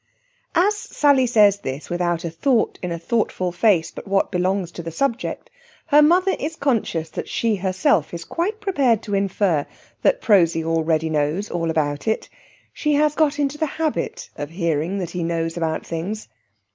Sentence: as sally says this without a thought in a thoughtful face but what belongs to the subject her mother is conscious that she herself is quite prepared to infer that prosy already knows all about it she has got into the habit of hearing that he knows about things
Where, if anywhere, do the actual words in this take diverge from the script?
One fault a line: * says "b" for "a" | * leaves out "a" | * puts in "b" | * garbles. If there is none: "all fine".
all fine